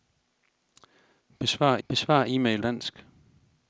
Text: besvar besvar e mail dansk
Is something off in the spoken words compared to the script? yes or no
no